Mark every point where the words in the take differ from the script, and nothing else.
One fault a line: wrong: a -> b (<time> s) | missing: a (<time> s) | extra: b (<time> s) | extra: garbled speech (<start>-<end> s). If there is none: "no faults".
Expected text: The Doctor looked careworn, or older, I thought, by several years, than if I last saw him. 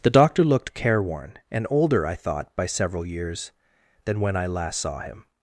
wrong: or -> and (1.5 s)
wrong: if -> when (4.2 s)